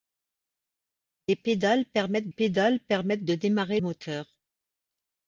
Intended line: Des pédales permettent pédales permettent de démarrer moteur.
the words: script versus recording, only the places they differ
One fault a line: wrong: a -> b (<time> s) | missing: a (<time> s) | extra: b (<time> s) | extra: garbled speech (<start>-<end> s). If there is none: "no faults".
no faults